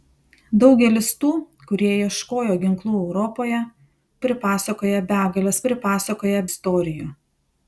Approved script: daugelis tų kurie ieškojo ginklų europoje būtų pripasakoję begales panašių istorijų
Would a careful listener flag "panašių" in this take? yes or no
yes